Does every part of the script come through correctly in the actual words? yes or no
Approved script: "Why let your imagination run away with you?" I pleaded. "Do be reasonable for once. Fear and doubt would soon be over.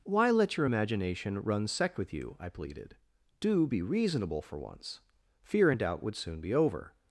no